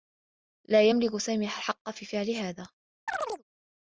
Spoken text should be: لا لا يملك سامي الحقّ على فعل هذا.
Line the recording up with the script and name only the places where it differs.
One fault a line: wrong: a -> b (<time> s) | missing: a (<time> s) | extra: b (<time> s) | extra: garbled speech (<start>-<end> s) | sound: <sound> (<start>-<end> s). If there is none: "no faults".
missing: لا (0.9 s)
wrong: على -> في (1.9 s)
sound: chirp (3.1-3.4 s)